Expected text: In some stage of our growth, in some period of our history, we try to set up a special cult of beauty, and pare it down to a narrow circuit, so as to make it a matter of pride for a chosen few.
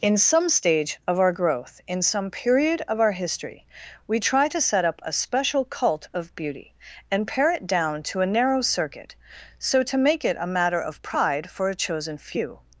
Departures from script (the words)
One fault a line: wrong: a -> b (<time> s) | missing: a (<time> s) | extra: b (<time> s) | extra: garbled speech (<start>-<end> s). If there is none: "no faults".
missing: as (9.8 s)